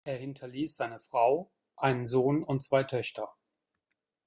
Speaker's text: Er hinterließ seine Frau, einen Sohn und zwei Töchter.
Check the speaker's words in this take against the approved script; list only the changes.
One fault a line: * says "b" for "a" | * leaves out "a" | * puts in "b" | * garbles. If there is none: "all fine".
all fine